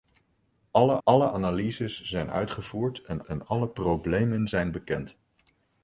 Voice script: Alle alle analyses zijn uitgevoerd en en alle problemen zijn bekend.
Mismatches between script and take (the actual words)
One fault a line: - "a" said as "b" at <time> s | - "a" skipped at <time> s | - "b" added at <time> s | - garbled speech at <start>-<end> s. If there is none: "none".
none